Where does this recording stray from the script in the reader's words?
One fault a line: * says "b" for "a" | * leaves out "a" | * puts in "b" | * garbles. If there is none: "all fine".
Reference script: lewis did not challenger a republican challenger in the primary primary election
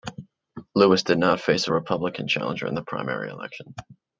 * says "face" for "challenger"
* leaves out "primary"